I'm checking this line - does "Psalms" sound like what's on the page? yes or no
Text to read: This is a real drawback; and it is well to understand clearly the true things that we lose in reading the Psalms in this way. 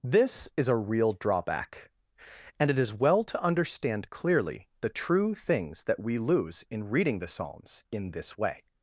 yes